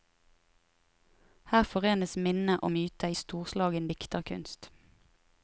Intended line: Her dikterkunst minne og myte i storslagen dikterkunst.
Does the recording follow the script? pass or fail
fail